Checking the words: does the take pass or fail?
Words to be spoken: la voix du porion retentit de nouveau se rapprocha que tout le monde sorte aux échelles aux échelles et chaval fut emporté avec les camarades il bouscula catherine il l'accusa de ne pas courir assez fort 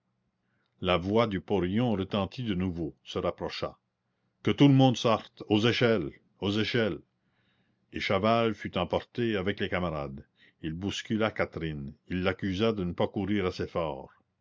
pass